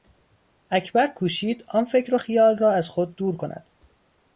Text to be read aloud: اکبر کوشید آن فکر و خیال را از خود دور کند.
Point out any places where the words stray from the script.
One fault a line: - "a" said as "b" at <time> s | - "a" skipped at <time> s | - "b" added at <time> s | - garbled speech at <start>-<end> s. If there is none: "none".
none